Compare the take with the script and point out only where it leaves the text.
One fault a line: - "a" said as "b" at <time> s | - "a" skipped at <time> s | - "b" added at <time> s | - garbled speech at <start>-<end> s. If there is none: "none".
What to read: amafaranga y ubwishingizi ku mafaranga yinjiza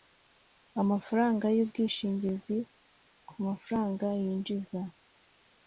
none